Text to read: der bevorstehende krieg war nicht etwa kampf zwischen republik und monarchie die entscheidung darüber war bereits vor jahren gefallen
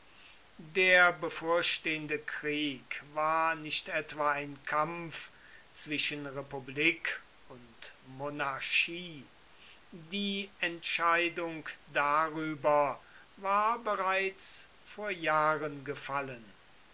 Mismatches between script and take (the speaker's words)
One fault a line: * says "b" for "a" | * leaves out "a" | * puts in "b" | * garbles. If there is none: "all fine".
* puts in "ein"